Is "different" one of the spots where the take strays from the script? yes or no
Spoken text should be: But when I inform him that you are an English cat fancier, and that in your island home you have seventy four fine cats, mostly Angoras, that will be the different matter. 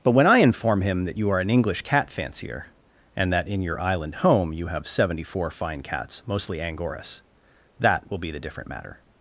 no